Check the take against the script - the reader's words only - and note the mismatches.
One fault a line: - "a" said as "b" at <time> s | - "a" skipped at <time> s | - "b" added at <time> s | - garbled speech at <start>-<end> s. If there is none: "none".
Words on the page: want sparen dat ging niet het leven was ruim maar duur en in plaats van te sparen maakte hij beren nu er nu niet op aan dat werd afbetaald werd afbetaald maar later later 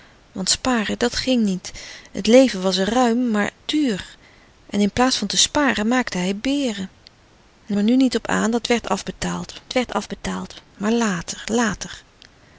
none